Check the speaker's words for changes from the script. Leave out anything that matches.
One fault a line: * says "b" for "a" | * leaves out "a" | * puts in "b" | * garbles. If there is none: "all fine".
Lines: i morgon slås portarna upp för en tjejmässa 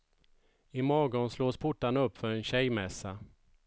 all fine